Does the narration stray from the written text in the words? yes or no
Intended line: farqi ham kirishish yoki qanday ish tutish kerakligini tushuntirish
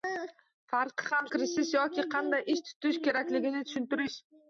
no